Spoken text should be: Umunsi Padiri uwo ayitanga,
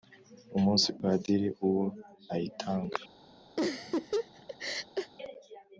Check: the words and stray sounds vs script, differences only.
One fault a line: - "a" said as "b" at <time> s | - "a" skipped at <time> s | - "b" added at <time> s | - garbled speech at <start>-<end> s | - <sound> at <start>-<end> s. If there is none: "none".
- laugh at 3.6-5.1 s